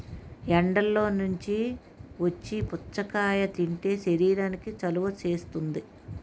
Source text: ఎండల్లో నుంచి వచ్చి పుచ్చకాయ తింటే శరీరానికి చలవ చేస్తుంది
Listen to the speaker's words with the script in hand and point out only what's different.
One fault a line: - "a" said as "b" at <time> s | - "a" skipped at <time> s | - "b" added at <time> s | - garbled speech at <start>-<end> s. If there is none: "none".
none